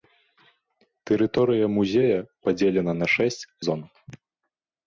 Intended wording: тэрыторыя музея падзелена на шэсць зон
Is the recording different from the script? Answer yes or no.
no